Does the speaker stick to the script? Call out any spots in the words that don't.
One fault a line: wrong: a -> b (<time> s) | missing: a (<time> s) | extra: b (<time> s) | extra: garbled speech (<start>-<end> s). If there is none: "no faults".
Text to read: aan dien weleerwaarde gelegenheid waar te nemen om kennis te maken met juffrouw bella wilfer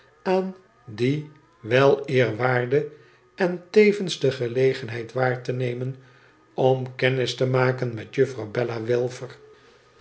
extra: en tevens de (3.4 s)